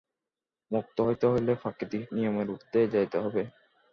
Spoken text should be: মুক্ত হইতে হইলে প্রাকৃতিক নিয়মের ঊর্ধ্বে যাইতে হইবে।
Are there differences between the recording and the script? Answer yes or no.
no